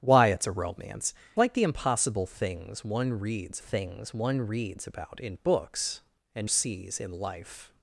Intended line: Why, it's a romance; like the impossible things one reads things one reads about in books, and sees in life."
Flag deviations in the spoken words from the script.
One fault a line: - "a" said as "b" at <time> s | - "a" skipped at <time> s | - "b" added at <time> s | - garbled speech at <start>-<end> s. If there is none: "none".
none